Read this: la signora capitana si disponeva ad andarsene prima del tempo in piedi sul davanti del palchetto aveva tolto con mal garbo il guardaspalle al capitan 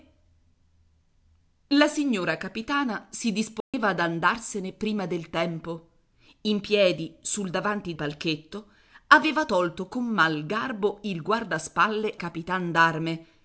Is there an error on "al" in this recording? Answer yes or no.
yes